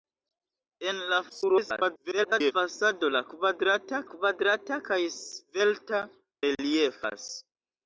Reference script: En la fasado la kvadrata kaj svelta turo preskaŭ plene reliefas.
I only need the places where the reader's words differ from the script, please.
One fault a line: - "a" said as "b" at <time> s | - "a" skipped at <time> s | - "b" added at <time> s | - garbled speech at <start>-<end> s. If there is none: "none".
- garbled speech at 1.3-2.5 s
- "kvadrata" added at 4.1 s
- "turo preskaŭ plene" skipped at 6.0 s